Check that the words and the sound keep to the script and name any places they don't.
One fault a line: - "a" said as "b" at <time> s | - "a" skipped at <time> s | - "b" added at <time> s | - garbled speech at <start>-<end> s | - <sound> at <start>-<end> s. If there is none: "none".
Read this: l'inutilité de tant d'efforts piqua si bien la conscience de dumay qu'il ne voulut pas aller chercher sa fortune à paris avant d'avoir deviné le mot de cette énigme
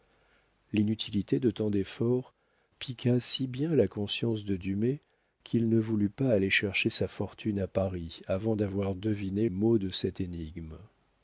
- "le" skipped at 9.5 s